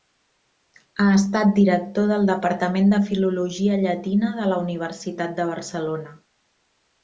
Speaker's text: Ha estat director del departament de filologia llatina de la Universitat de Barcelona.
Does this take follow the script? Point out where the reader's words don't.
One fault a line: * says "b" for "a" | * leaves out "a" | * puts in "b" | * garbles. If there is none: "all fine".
all fine